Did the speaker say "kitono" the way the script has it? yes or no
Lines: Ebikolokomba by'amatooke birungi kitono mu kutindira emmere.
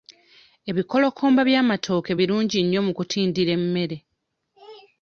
no